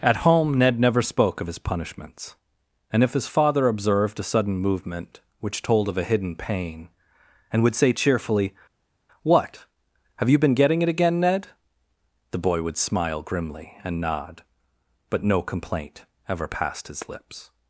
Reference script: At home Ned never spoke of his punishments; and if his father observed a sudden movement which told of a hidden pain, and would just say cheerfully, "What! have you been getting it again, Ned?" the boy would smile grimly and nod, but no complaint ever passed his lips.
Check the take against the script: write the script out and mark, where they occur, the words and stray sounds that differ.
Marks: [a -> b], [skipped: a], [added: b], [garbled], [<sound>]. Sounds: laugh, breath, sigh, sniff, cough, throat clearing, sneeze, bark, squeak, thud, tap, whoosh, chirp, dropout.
At home Ned never spoke of his punishments; and if his father observed a sudden movement which told of a hidden pain, and would [skipped: just] say cheerfully, "What! have you been getting it again, Ned?" the boy would smile grimly and nod, but no complaint ever passed his lips.